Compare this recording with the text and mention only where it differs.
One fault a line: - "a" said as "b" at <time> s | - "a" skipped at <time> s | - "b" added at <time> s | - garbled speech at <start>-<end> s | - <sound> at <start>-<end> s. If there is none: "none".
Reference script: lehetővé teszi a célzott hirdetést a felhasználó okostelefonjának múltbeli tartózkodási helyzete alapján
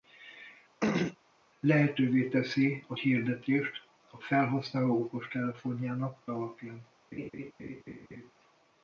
- throat clearing at 0.8-1.2 s
- "célzott" skipped at 2.9 s
- "múltbeli tartózkodási helyzete" skipped at 6.2 s
- laugh at 7.1-8.3 s